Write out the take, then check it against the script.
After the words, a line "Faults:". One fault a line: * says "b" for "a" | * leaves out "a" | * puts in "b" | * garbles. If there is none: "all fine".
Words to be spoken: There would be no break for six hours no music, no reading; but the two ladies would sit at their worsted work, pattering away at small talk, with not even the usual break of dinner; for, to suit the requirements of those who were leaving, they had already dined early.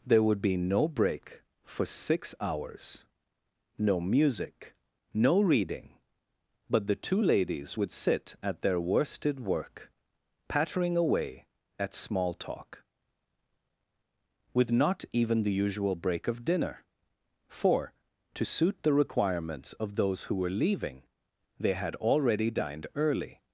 There would be no break for six hours no music, no reading; but the two ladies would sit at their worsted work, pattering away at small talk, with not even the usual break of dinner; for, to suit the requirements of those who were leaving, they had already dined early.
Faults:
all fine